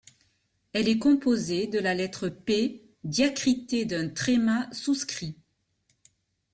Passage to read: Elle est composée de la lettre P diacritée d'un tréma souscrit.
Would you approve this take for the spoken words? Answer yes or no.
yes